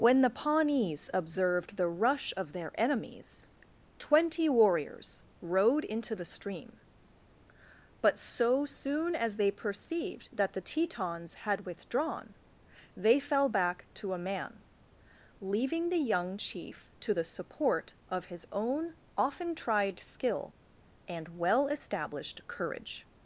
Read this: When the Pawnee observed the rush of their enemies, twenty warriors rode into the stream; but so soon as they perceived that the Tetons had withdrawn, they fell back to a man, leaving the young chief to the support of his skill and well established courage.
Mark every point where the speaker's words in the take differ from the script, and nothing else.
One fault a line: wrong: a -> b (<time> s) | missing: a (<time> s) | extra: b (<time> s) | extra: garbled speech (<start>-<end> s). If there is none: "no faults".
wrong: Pawnee -> Pawnees (0.3 s)
extra: own often tried (18.5 s)